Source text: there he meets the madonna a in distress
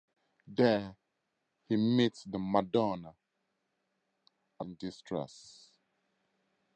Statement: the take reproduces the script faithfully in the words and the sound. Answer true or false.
true